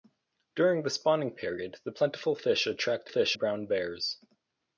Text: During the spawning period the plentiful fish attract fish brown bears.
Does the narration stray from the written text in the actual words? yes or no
no